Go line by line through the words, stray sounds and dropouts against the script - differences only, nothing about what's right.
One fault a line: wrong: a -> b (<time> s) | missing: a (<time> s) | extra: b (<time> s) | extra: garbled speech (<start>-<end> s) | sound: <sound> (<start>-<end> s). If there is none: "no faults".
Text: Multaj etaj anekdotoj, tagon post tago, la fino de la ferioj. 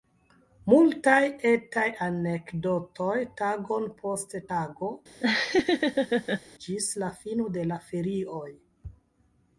sound: laugh (5.2-6.4 s)
extra: ĝis (6.7 s)